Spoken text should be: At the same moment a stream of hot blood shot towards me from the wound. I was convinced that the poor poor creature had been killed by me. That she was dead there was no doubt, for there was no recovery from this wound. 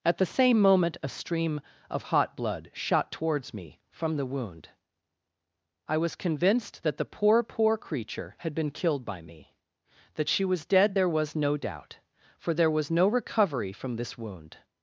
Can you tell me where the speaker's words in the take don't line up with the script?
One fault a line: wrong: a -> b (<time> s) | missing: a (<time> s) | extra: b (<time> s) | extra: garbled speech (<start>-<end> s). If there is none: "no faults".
no faults